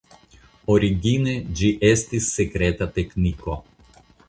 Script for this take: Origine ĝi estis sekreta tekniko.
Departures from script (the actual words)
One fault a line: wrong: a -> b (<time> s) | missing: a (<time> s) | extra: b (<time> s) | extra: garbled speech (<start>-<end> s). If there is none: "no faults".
no faults